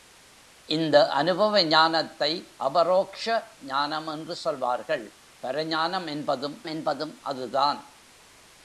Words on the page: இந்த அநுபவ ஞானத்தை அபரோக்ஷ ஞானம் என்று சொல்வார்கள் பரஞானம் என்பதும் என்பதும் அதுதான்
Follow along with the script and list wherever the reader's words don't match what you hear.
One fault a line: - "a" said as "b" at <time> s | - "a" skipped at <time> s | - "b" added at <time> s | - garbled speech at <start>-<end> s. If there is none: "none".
none